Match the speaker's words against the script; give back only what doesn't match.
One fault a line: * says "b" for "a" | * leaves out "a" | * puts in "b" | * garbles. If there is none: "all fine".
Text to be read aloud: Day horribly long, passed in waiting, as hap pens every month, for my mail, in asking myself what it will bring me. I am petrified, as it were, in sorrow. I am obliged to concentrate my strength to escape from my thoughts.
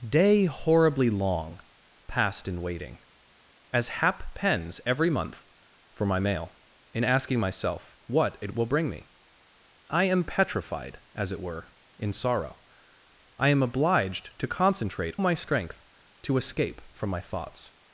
all fine